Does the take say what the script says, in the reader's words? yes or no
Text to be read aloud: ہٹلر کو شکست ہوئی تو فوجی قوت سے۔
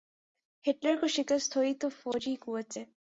yes